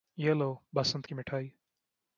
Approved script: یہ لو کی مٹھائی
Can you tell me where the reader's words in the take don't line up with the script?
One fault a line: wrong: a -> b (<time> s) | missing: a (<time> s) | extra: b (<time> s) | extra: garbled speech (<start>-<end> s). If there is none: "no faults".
extra: بسنت (0.8 s)